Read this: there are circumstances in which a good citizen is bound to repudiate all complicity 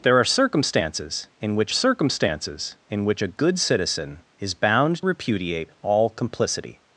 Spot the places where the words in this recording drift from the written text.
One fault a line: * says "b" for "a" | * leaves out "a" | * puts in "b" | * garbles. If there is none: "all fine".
* puts in "circumstances in which"
* leaves out "to"